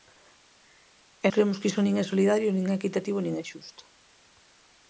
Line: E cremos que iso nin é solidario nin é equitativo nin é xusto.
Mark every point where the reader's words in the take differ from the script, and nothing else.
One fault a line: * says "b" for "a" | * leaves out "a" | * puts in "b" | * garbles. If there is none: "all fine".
all fine